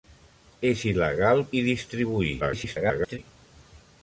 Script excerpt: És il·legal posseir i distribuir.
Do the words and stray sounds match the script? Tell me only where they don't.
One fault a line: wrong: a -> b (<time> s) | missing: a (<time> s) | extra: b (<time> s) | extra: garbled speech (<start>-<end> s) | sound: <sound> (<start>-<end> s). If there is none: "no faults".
missing: posseir (1.4 s)
extra: garbled speech (2.4-3.2 s)